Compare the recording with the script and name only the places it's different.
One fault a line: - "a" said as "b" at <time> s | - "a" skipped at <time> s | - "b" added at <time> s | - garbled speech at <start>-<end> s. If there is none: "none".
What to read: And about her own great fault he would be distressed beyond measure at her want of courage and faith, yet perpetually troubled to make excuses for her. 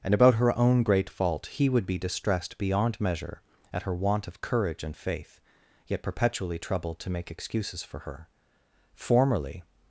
- "Formerly" added at 8.9 s